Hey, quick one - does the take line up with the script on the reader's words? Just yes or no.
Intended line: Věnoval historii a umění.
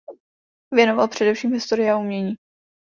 no